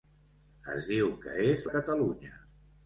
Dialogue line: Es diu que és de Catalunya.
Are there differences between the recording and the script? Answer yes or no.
no